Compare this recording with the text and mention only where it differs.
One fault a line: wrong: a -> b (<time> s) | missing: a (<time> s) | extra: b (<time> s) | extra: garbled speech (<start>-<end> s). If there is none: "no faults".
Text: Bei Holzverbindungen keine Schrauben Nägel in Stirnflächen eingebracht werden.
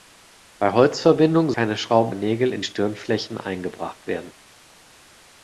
no faults